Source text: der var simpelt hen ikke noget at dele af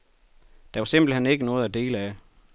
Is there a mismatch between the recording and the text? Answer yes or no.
no